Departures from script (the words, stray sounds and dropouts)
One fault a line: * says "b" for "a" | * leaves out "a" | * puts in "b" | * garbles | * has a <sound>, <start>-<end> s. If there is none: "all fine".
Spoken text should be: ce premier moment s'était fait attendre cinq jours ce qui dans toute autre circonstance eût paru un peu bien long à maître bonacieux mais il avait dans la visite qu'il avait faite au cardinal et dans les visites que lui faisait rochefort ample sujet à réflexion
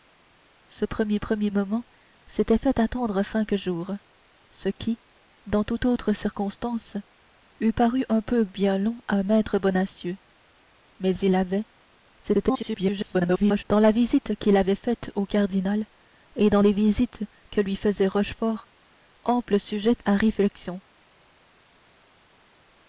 * puts in "premier"
* garbles